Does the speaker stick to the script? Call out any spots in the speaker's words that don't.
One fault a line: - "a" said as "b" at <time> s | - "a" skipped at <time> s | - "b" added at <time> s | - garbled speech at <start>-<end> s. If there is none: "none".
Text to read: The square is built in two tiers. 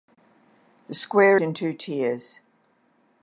- "is built" skipped at 1.4 s